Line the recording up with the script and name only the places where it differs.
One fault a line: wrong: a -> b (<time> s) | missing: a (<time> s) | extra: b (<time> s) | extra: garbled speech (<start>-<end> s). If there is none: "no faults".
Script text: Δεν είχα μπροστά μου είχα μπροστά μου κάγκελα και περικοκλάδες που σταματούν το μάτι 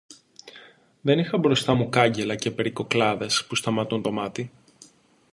missing: είχα μπροστά μου (1.9 s)